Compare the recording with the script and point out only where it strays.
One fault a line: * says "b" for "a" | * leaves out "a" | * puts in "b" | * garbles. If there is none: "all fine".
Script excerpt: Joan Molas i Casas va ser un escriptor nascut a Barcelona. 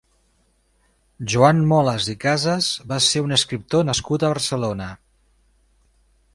all fine